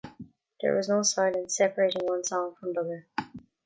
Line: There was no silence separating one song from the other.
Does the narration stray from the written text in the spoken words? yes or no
no